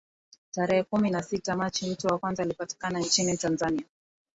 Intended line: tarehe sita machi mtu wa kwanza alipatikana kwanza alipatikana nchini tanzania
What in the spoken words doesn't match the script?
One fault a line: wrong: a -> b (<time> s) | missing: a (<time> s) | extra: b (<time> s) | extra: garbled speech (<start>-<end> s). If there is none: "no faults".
extra: kumi na (0.8 s)
missing: kwanza alipatikana (3.0 s)